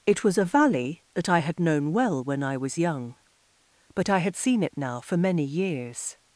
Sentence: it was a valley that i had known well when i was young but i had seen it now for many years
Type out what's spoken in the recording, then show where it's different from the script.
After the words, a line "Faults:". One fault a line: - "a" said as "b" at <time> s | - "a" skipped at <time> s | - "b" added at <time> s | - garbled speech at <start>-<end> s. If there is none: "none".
it was a valley that i had known well when i was young but i had seen it now for many years
Faults:
none